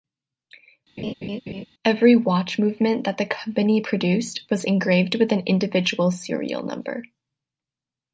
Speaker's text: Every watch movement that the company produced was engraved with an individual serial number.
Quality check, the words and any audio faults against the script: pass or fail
fail